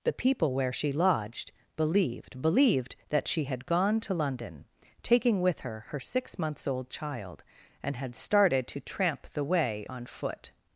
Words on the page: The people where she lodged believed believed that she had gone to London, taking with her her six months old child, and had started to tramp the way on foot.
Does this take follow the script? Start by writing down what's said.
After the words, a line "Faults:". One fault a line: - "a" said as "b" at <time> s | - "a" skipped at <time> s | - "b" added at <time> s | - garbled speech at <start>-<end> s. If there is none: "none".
The people where she lodged believed believed that she had gone to London, taking with her her six months old child, and had started to tramp the way on foot.
Faults:
none